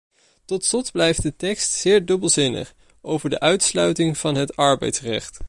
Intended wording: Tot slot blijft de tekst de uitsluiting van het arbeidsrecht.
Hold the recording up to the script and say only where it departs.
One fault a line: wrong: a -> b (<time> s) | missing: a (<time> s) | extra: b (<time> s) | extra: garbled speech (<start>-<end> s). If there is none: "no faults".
extra: zeer dubbelzinnig over (1.7 s)